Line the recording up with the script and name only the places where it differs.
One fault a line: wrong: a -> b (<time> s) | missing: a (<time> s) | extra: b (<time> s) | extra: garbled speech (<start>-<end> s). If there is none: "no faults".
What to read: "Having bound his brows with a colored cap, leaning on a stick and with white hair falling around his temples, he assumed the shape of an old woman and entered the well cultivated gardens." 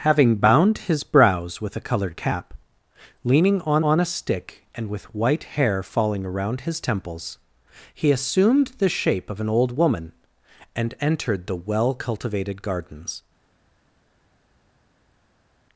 extra: on (3.8 s)